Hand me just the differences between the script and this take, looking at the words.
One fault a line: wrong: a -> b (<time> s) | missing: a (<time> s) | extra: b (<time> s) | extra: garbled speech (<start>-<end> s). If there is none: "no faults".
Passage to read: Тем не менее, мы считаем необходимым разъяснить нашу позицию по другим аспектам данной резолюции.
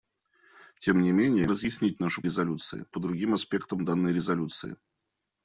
missing: мы считаем необходимым (1.5 s)
wrong: позицию -> резолюции (2.2 s)